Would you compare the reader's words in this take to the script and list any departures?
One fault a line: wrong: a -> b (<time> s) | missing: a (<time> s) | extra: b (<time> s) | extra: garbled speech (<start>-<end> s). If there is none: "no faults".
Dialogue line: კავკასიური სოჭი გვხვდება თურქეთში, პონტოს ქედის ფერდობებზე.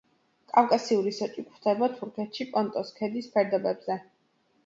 no faults